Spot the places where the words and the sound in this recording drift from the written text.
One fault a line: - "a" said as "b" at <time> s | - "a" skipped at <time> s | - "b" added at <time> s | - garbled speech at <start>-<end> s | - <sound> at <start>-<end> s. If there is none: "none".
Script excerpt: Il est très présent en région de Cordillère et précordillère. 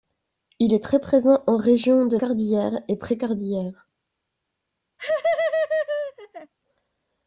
- laugh at 5.0-6.5 s